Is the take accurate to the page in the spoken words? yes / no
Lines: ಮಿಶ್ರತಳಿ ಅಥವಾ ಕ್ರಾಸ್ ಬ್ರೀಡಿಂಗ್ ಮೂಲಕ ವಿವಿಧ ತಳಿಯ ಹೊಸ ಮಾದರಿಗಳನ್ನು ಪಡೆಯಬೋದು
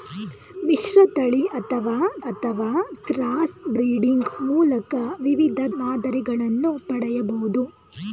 no